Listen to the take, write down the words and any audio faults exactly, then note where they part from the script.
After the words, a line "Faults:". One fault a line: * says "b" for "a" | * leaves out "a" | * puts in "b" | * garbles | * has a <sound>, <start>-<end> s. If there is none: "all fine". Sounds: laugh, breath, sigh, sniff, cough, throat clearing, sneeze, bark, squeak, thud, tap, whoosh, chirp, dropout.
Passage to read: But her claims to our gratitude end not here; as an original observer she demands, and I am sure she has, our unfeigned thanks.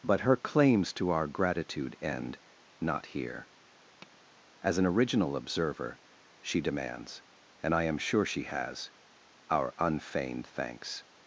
But her claims to our gratitude end not here; as an original observer she demands, and I am sure she has, our unfeigned thanks.
Faults:
* has a tap, 4.0-4.2 s